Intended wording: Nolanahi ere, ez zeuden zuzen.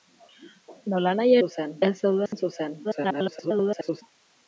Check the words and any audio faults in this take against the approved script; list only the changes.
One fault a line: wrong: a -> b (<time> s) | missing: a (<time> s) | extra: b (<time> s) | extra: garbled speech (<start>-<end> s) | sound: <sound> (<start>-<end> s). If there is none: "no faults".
wrong: ere -> zuzen (1.4 s)
sound: dropout (2.3-2.3 s)
extra: garbled speech (2.8-4.0 s)